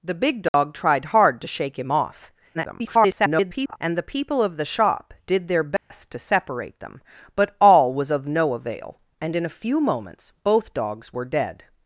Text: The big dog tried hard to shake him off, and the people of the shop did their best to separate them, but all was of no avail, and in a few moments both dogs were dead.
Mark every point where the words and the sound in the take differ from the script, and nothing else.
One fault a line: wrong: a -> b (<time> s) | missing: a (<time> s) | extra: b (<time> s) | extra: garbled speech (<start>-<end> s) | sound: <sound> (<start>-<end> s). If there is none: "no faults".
sound: dropout (0.5-0.5 s)
extra: garbled speech (2.5-3.8 s)
sound: dropout (5.8-5.9 s)